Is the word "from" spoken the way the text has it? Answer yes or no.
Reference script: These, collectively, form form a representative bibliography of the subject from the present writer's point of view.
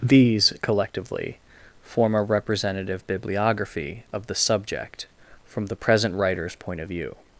yes